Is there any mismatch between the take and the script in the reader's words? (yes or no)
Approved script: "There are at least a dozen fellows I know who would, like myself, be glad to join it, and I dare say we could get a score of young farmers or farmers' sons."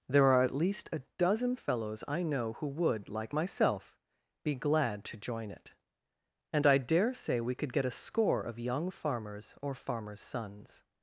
no